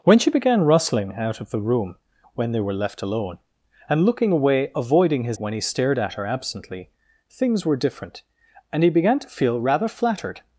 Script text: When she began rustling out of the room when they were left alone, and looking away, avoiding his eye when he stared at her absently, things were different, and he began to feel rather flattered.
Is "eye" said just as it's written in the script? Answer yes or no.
no